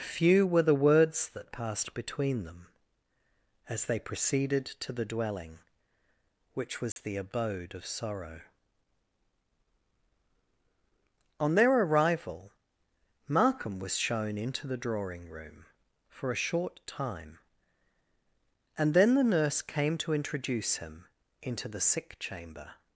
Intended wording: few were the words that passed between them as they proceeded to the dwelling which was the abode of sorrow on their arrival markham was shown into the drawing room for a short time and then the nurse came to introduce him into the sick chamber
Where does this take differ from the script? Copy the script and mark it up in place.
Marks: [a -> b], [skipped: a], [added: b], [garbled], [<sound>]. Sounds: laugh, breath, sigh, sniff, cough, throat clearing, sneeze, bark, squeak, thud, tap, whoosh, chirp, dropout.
few were the words that passed between them as they proceeded to the dwelling which was [dropout] the abode of sorrow on their arrival markham was shown into the drawing room for a short time and then the nurse came to introduce him into the sick chamber